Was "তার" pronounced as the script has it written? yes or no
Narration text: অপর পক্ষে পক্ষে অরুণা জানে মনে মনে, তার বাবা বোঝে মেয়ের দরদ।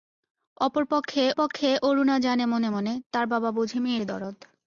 yes